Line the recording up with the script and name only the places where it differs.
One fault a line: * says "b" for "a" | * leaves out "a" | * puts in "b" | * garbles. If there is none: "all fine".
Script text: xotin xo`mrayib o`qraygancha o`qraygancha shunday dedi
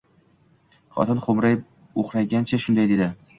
* leaves out "o`qraygancha"